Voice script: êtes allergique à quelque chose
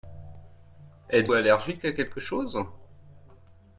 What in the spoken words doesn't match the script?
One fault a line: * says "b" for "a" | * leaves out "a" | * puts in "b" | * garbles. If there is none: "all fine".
all fine